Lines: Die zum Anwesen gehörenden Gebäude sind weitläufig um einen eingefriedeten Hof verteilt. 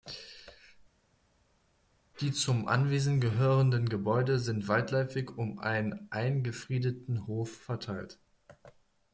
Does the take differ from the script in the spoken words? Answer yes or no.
no